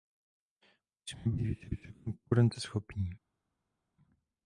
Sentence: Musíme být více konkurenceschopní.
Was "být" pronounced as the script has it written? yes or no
yes